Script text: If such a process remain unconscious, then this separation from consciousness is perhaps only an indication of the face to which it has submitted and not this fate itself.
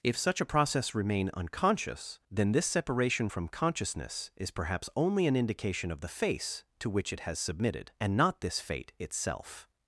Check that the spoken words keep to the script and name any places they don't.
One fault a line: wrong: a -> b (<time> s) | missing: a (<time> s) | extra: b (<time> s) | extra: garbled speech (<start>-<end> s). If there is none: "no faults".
no faults